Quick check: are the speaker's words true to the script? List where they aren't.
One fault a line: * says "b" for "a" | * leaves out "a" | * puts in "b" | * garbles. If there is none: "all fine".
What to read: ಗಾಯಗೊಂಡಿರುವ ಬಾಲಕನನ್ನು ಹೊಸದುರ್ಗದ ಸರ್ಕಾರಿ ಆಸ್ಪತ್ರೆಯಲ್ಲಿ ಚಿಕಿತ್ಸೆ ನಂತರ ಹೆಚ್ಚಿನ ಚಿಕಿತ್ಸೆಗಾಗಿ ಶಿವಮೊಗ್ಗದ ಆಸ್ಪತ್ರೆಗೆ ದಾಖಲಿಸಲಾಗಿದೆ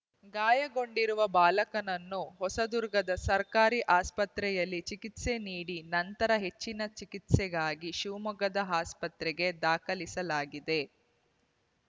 * puts in "ನೀಡಿ"